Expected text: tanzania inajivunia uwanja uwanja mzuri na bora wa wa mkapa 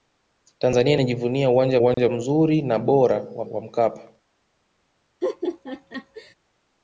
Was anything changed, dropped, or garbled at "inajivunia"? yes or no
no